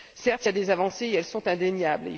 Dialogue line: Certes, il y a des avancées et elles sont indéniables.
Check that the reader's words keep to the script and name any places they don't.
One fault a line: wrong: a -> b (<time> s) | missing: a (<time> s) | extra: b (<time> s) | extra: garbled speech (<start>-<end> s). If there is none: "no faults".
no faults